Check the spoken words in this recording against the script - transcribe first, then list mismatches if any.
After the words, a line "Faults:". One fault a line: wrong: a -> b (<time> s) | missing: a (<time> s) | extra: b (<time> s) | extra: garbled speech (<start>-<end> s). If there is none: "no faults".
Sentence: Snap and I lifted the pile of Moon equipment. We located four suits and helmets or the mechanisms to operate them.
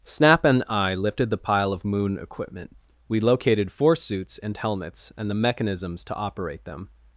Snap and I lifted the pile of Moon equipment. We located four suits and helmets and the mechanisms to operate them.
Faults:
wrong: or -> and (5.2 s)